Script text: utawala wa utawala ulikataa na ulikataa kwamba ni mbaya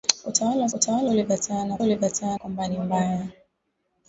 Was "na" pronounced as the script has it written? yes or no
yes